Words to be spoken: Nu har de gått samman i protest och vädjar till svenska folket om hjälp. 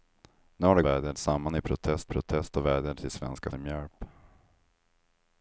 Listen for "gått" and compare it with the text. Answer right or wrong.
wrong